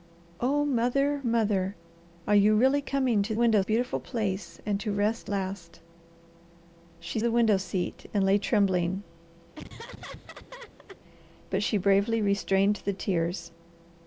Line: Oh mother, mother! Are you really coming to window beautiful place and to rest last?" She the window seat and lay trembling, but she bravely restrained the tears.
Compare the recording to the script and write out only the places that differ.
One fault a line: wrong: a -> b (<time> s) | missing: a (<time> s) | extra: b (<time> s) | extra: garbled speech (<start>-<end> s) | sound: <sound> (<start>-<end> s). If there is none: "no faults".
sound: laugh (9.6-11.0 s)